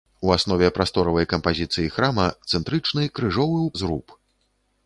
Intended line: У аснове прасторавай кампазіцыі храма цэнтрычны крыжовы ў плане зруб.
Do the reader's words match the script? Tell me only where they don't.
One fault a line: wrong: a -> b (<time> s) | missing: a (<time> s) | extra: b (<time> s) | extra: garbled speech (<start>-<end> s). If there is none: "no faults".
missing: плане (3.7 s)